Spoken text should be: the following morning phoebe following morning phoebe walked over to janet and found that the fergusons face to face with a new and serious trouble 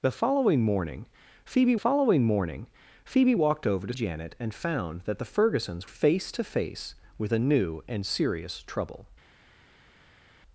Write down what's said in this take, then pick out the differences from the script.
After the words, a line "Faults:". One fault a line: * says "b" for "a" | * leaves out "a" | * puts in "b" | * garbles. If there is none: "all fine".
the following morning phoebe following morning phoebe walked over to janet and found that the fergusons face to face with a new and serious trouble
Faults:
all fine